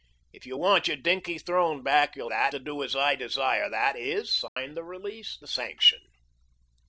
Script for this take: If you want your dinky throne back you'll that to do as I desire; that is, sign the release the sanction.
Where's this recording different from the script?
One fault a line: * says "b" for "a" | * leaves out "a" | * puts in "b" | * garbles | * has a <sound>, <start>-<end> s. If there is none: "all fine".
* has a dropout, 4.5-4.6 s